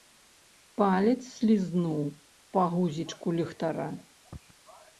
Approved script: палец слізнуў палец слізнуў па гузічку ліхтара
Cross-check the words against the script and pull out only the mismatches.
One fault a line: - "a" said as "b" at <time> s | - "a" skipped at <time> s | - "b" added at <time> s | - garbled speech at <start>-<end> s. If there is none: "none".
- "палец слізнуў" skipped at 2.0 s